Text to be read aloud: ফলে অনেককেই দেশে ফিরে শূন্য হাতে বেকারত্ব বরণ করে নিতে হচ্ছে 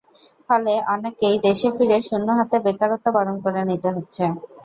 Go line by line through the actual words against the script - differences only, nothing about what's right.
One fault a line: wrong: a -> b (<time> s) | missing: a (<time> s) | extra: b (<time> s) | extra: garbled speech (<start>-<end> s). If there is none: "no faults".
no faults